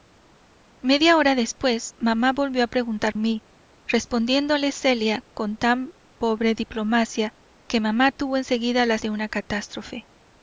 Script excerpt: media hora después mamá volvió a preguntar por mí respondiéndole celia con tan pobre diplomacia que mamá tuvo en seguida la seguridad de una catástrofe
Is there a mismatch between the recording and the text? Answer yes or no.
yes